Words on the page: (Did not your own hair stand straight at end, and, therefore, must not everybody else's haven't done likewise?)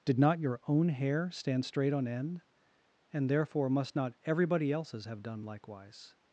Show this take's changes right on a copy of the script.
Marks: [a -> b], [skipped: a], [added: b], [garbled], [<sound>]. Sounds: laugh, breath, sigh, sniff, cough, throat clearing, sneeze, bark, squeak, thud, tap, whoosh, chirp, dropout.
(Did not your own hair stand straight [at -> on] end, and, therefore, must not everybody else's [haven't -> have] done likewise?)